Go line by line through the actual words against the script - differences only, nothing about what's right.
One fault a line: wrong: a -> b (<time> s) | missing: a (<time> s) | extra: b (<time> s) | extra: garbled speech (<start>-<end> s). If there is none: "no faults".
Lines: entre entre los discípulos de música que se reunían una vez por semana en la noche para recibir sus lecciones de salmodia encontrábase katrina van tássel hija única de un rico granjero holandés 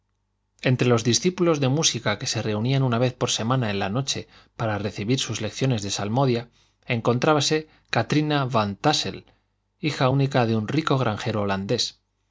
missing: entre (0.9 s)